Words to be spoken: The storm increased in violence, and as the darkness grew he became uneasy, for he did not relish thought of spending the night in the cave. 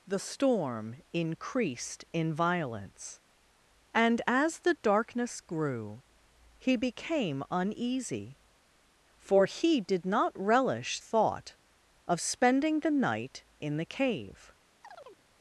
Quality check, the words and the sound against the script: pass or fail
fail